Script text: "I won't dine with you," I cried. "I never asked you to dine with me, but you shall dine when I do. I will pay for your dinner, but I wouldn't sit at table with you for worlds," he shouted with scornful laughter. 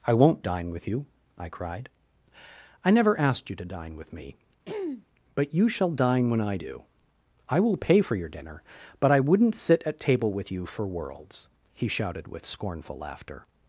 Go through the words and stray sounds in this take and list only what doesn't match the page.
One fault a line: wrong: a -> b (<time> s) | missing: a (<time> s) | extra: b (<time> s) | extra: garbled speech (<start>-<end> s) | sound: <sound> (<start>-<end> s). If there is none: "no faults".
sound: throat clearing (4.7-5.1 s)